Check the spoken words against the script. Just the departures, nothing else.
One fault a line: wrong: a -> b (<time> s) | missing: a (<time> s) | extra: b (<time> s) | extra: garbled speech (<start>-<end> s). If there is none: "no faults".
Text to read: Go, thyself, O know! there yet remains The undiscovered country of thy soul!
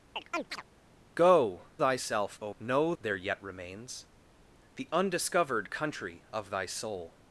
no faults